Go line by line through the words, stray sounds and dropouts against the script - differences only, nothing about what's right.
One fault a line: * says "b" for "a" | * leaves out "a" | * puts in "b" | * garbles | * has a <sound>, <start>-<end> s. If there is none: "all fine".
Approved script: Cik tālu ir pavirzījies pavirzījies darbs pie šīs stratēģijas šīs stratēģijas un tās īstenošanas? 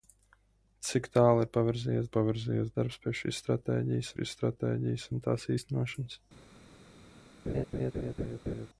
* has a laugh, 7.5-8.7 s